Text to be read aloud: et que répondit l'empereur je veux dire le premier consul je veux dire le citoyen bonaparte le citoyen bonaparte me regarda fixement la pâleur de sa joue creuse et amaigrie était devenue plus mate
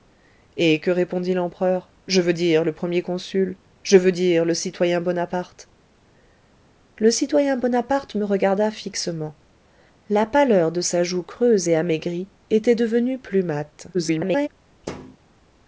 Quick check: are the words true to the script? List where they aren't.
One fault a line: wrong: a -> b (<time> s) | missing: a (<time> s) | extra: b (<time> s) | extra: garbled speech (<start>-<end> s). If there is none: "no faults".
extra: garbled speech (13.9-14.5 s)